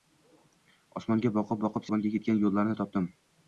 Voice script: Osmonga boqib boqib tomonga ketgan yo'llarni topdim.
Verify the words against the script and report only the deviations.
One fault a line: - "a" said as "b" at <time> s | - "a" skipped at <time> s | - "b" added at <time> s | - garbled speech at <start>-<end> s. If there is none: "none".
none